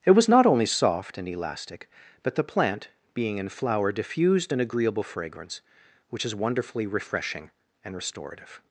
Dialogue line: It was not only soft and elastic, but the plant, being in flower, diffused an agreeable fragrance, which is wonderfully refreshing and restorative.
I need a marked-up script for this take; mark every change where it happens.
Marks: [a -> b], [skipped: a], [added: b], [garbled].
It was not only soft and elastic, but the plant, being in flower, diffused an agreeable fragrance, which is wonderfully refreshing and restorative.